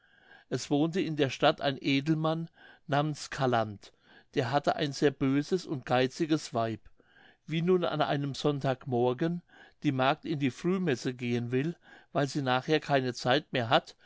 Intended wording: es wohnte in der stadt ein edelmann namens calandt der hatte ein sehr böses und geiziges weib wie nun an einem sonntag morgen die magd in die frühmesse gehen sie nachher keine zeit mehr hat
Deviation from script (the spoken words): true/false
true